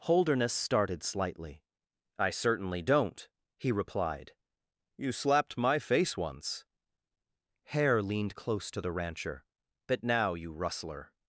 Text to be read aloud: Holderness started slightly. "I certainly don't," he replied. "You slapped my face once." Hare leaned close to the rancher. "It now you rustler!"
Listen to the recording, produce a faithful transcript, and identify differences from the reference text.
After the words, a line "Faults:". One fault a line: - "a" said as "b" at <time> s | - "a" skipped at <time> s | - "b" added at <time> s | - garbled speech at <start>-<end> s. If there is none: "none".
Holderness started slightly. "I certainly don't," he replied. "You slapped my face once." Hare leaned close to the rancher. "It now you rustler!"
Faults:
none